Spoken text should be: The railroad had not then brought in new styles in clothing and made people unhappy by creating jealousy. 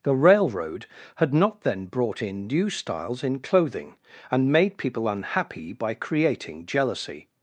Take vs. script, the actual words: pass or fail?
pass